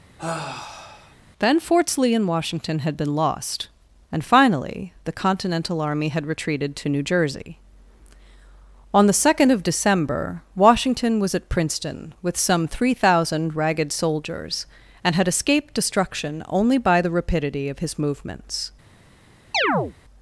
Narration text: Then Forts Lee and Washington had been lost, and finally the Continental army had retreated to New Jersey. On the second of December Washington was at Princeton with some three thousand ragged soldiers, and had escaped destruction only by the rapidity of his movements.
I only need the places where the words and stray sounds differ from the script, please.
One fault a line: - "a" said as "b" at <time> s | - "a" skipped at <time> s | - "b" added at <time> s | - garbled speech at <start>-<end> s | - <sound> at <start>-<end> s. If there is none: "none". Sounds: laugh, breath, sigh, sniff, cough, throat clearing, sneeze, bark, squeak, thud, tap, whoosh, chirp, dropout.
- sigh at 0.2-1.2 s
- chirp at 19.5-19.9 s